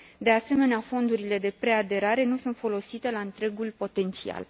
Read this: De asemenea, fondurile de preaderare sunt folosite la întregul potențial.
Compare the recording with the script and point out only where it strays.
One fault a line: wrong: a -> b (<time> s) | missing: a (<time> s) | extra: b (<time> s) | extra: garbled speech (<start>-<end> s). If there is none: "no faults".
extra: nu (2.2 s)